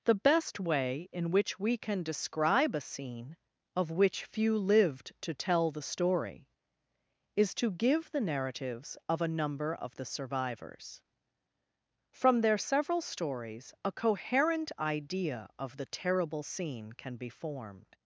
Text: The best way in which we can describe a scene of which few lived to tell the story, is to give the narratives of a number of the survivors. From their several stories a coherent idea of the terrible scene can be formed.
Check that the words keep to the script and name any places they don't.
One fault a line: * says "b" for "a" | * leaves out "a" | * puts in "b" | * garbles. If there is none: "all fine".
all fine